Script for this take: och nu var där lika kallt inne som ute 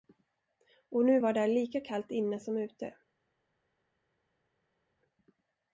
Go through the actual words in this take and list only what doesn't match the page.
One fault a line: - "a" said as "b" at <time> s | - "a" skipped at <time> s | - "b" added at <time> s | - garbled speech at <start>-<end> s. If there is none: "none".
none